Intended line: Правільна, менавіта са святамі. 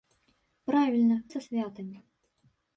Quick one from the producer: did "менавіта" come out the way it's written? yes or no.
no